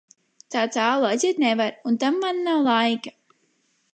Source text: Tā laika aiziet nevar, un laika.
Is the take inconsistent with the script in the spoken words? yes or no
yes